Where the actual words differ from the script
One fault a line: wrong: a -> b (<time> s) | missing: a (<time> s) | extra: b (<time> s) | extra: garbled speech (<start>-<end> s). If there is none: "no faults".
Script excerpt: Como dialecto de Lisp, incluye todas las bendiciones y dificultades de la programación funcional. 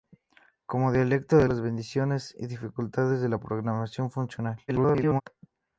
missing: Lisp incluye todas (1.5 s)
extra: garbled speech (4.7-5.2 s)